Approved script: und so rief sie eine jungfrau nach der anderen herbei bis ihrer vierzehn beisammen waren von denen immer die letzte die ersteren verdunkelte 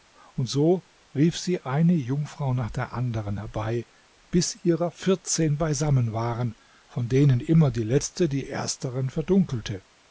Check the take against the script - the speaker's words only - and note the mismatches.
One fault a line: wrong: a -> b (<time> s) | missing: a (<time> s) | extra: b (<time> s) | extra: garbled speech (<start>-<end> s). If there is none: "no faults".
no faults